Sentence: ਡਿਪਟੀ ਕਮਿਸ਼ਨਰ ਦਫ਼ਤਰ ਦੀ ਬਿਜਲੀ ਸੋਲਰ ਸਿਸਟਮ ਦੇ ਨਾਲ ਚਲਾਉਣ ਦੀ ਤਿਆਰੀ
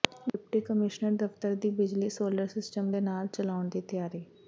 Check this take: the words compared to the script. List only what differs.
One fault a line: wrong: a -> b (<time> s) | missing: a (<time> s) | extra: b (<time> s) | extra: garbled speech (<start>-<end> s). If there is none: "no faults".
no faults